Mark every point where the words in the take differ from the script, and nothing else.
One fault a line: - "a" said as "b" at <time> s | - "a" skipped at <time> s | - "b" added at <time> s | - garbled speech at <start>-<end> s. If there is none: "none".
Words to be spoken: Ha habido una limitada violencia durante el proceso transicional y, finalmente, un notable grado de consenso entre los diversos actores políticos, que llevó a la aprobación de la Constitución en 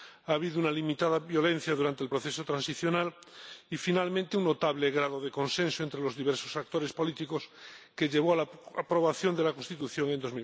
none